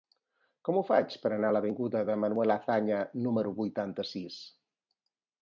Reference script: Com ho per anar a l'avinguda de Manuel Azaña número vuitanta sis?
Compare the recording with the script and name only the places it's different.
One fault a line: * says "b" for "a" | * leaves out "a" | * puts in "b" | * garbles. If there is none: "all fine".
* puts in "faig"